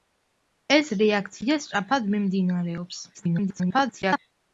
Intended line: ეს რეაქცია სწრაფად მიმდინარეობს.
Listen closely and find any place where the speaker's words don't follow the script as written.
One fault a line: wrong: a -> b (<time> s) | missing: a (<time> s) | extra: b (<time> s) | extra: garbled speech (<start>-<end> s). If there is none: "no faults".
extra: garbled speech (3.1-4.2 s)